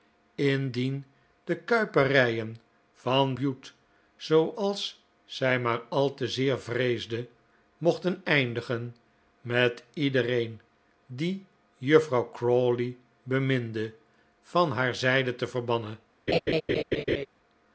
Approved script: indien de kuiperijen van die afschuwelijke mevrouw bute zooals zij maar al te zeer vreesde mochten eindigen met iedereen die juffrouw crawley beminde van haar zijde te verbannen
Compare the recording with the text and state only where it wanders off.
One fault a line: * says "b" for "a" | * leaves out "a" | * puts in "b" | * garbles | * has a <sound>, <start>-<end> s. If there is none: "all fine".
* leaves out "die afschuwelijke mevrouw"
* has a laugh, 16.3-17.3 s